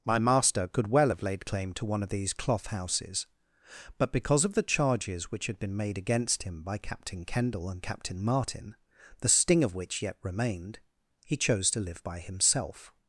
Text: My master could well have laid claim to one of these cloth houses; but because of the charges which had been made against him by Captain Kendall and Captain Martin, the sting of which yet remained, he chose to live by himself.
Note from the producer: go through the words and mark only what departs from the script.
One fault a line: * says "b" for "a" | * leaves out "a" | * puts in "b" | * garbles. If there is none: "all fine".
all fine